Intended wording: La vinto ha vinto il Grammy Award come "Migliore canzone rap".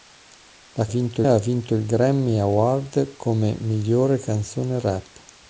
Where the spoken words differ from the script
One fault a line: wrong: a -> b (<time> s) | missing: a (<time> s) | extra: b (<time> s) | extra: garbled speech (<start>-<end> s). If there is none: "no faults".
no faults